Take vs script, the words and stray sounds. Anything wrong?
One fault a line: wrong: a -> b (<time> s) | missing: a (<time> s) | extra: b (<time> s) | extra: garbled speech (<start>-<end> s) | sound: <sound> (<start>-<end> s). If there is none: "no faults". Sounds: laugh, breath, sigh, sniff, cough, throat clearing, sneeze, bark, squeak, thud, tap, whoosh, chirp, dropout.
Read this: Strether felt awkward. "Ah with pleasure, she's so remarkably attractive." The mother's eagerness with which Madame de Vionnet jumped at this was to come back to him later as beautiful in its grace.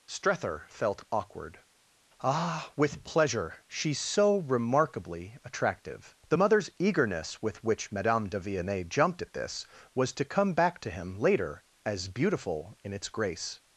no faults